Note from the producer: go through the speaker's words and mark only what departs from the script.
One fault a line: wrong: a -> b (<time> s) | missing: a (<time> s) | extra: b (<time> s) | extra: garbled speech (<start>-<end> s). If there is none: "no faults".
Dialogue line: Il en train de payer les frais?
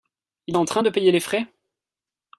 no faults